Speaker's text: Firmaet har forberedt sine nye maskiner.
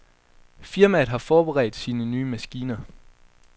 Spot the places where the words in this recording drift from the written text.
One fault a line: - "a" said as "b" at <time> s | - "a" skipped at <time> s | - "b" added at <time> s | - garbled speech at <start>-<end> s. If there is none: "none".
none